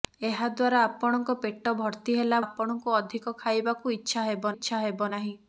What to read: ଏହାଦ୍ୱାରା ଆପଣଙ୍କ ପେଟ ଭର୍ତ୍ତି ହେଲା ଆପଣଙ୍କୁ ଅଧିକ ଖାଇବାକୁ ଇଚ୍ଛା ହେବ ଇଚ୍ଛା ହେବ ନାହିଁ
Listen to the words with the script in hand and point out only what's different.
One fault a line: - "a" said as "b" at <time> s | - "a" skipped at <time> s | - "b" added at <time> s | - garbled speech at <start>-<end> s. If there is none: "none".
none